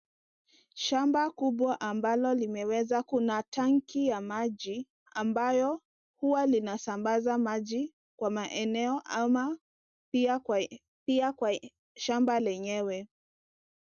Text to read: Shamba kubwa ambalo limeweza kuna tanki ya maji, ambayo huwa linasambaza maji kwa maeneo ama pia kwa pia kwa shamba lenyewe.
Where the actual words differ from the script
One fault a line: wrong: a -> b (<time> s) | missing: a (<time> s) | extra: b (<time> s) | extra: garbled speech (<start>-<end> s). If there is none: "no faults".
no faults